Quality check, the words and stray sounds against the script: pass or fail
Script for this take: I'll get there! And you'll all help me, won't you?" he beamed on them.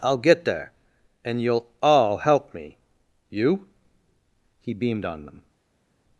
fail